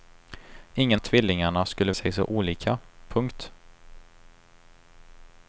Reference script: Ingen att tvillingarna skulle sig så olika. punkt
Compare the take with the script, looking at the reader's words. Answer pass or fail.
pass